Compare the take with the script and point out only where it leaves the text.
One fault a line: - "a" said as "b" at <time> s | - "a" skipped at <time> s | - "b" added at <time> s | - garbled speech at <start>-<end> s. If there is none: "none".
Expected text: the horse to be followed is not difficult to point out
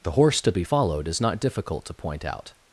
none